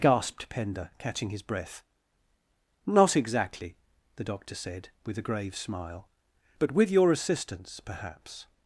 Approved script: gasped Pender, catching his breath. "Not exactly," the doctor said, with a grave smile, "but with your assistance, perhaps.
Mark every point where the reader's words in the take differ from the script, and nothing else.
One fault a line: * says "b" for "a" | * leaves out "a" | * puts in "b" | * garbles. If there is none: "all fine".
all fine